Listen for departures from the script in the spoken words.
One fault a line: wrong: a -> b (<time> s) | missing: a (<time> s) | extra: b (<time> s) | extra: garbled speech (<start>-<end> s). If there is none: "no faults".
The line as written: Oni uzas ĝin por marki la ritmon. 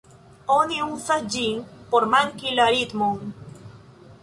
no faults